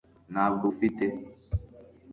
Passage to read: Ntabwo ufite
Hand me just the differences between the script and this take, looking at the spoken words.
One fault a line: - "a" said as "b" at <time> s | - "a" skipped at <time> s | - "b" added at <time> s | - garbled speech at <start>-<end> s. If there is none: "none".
none